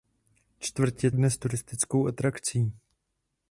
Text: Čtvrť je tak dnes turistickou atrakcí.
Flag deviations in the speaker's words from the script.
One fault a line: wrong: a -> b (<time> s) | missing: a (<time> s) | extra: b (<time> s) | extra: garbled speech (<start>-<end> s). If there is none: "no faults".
missing: tak (1.1 s)